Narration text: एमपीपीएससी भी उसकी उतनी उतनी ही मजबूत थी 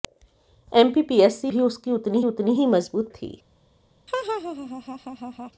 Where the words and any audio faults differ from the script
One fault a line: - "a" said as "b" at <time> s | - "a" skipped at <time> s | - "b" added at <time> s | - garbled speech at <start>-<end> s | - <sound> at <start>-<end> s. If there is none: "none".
- laugh at 4.1-5.5 s